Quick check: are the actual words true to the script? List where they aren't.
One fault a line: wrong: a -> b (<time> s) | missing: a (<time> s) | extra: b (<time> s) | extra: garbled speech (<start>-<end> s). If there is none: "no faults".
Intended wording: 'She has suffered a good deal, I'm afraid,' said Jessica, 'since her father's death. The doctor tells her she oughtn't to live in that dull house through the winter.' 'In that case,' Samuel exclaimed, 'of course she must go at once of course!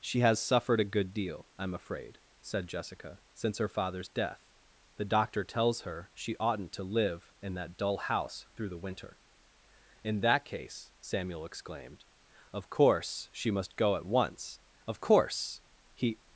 extra: He (15.9 s)